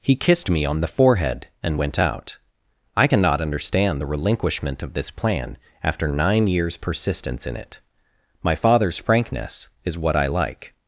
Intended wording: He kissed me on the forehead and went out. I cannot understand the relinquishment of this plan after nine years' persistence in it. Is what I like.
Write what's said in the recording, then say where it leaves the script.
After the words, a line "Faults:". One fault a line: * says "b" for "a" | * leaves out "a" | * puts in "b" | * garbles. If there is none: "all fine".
He kissed me on the forehead and went out. I cannot understand the relinquishment of this plan after nine years' persistence in it. My father's frankness is what I like.
Faults:
* puts in "My father's frankness"